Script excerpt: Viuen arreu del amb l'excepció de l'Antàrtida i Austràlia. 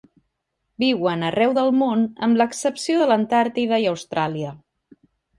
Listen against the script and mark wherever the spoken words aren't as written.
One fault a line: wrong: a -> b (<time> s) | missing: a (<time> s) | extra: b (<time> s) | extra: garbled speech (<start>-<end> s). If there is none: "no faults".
extra: món (1.8 s)